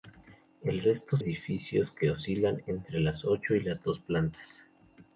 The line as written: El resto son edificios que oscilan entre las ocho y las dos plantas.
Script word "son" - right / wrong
wrong